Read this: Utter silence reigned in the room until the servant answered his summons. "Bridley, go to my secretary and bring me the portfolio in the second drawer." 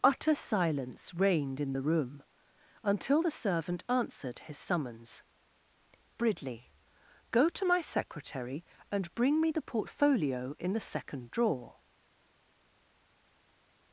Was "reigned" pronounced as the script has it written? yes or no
yes